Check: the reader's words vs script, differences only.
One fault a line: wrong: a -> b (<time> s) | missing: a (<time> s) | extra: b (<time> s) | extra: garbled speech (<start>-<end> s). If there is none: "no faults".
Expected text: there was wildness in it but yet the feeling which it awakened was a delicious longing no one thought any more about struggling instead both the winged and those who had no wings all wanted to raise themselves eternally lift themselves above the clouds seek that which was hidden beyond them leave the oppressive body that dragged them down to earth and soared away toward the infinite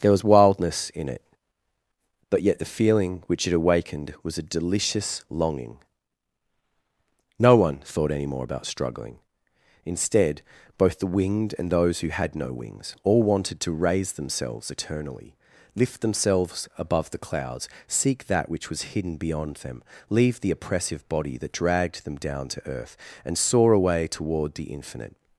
wrong: soared -> soar (23.4 s)